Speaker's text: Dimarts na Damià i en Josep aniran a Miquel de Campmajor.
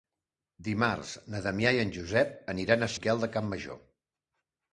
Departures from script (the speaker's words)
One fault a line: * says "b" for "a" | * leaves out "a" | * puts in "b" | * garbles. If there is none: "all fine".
all fine